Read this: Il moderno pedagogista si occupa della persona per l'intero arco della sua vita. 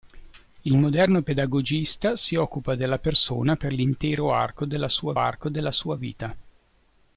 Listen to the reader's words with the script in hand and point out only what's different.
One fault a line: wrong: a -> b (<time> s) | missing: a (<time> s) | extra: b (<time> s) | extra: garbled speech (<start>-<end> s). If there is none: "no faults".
extra: arco della sua (5.2 s)